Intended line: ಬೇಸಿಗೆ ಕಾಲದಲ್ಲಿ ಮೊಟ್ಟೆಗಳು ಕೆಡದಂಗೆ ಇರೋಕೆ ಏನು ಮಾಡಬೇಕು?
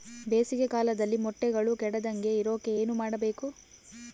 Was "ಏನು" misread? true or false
false